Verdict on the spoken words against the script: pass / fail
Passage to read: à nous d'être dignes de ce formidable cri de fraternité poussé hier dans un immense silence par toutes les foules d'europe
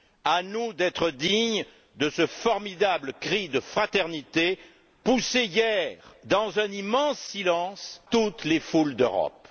fail